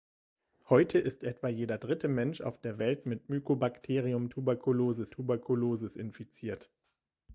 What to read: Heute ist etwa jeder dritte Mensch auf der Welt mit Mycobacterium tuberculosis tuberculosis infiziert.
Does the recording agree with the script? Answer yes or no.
yes